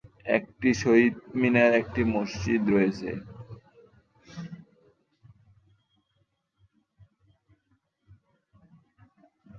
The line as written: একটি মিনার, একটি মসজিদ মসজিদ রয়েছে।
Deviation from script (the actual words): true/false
true